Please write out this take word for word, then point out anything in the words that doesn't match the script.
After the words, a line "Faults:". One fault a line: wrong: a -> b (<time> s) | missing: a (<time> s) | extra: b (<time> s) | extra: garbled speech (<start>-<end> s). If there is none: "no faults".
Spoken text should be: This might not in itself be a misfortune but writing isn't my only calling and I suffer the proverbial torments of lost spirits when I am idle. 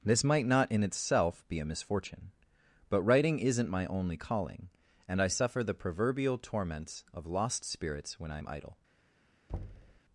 This might not in itself be a misfortune but writing isn't my only calling and I suffer the proverbial torments of lost spirits when I am idle.
Faults:
no faults